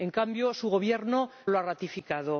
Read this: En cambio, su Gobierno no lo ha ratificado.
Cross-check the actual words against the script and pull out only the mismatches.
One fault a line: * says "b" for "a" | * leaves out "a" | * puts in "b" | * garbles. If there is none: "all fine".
* leaves out "no"